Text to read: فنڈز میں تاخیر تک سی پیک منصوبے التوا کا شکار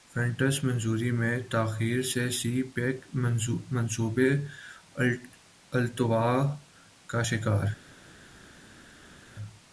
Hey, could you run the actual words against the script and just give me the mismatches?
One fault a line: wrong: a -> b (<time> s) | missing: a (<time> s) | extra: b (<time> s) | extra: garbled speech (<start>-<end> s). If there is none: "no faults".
extra: منظوری (0.6 s)
wrong: تک -> سے (2.0 s)